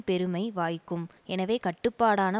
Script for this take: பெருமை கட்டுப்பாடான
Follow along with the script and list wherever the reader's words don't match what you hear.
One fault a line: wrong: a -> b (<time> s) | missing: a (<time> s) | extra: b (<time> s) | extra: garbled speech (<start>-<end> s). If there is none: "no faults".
extra: வாய்க்கும் எனவே (0.5 s)